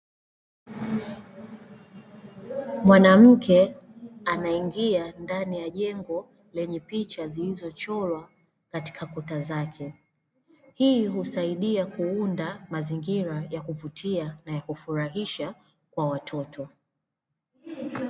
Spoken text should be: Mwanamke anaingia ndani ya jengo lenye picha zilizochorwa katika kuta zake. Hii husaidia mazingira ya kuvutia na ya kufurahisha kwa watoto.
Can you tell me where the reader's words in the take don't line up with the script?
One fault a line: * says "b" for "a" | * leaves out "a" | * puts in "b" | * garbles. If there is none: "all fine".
* puts in "kuunda"